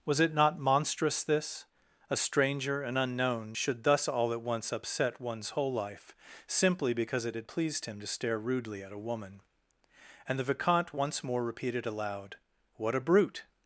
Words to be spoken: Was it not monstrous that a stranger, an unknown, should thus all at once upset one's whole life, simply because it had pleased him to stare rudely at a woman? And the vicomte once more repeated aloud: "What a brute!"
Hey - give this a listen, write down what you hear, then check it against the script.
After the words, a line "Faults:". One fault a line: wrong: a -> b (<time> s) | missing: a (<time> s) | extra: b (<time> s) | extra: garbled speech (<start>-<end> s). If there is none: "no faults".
Was it not monstrous this a stranger, an unknown, should thus all at once upset one's whole life, simply because it had pleased him to stare rudely at a woman? And the vicomte once more repeated aloud: "What a brute!"
Faults:
wrong: that -> this (1.2 s)